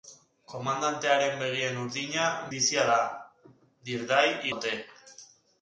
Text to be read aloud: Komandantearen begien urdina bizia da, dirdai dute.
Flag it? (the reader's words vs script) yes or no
no